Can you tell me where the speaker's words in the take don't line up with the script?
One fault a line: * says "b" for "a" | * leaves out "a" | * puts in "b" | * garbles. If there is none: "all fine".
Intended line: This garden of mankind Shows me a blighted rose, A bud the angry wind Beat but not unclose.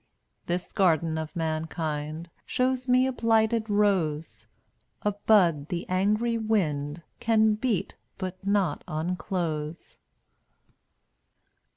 * puts in "Can"